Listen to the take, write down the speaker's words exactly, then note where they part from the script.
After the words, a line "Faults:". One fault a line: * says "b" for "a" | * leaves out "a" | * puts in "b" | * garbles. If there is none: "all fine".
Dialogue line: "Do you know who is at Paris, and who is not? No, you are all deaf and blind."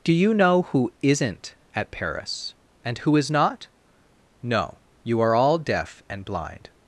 "Do you know who isn't at Paris, and who is not? No, you are all deaf and blind."
Faults:
* says "isn't" for "is"